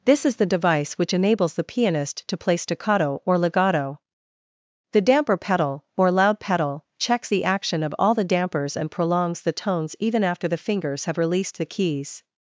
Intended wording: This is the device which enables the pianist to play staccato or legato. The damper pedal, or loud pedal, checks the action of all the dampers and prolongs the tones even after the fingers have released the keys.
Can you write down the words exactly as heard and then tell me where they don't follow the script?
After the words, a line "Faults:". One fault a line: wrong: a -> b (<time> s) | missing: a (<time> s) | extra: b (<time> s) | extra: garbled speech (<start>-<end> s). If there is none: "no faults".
This is the device which enables the pianist to play staccato or legato. The damper pedal, or loud pedal, checks the action of all the dampers and prolongs the tones even after the fingers have released the keys.
Faults:
no faults